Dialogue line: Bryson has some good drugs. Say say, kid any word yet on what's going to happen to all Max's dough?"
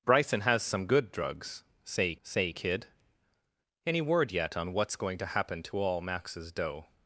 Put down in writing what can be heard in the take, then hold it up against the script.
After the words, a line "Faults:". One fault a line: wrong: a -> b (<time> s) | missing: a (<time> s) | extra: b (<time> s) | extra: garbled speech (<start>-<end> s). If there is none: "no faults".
Bryson has some good drugs. Say say, kid any word yet on what's going to happen to all Max's dough?"
Faults:
no faults